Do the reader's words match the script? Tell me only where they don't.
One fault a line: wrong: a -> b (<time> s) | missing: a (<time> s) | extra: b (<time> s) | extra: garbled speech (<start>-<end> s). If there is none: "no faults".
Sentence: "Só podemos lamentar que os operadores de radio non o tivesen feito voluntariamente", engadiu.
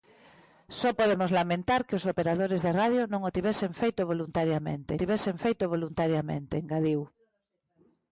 extra: tivesen feito voluntariamente (5.0 s)